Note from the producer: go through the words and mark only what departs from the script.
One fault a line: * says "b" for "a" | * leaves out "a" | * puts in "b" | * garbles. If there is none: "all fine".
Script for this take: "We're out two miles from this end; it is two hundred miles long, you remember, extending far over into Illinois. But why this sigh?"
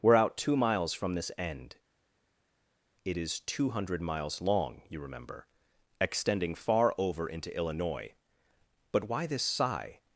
all fine